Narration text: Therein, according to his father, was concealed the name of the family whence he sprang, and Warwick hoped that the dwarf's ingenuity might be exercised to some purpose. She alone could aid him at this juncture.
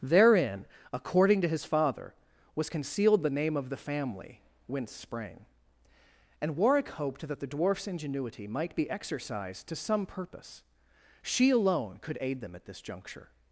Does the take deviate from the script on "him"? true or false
true